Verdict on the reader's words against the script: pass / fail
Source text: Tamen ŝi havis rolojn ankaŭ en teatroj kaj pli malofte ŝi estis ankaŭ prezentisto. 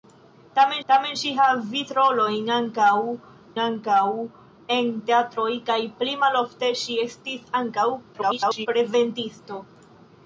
fail